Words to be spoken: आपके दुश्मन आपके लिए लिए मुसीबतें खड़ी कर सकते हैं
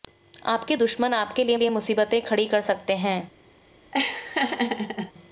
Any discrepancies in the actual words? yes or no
no